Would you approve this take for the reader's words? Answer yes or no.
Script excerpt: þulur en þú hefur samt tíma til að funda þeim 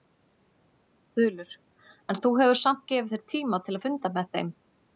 no